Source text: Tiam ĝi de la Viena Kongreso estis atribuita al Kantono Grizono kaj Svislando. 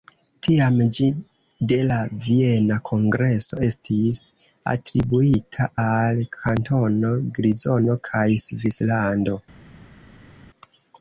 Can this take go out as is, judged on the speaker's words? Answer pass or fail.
pass